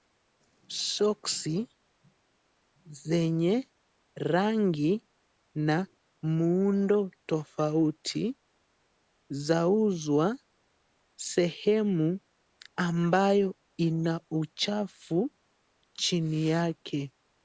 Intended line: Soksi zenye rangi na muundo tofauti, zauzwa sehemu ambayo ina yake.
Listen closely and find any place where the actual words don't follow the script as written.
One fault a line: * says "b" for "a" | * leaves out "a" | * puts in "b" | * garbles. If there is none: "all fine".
* puts in "uchafu chini"